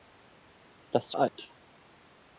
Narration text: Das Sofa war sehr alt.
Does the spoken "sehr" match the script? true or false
false